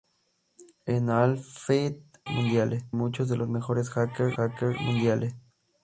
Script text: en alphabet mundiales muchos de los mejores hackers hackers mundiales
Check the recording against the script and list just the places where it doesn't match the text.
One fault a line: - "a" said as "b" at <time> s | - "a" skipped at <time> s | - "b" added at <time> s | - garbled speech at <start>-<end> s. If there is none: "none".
none